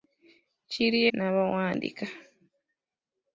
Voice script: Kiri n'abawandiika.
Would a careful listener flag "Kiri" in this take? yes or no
no